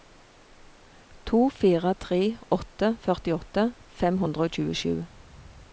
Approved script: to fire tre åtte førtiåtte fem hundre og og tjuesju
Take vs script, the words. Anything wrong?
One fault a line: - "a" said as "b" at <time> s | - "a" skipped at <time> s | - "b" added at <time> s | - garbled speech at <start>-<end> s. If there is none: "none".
- "og" skipped at 4.6 s